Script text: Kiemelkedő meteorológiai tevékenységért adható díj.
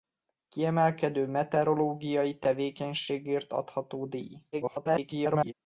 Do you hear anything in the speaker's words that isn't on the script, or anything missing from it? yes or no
yes